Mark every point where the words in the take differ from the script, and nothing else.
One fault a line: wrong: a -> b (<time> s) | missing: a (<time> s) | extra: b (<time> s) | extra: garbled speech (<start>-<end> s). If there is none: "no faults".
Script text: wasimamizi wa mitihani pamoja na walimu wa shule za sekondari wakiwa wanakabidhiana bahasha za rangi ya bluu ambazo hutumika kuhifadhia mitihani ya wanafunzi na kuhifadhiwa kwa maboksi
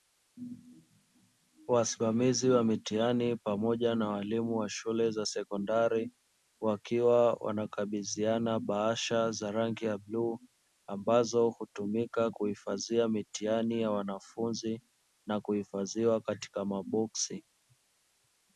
wrong: kwa -> katika (16.2 s)